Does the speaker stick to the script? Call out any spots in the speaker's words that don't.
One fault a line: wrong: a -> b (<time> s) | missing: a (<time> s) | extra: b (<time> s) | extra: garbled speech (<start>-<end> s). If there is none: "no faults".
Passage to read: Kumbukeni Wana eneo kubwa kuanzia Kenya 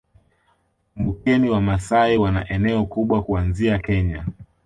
extra: Wamasai (1.5 s)